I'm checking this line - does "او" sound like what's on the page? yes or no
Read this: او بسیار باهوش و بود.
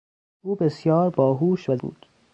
yes